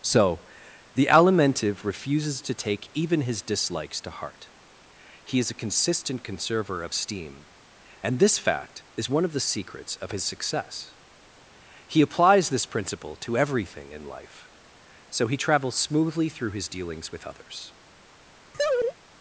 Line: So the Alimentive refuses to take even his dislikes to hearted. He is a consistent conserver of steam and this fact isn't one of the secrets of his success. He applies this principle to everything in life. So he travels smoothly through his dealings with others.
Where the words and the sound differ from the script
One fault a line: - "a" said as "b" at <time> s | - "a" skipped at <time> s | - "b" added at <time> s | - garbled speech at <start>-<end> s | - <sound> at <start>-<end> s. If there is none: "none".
- "hearted" said as "heart" at 4.1 s
- "isn't" said as "is" at 8.9 s
- laugh at 18.5-19.0 s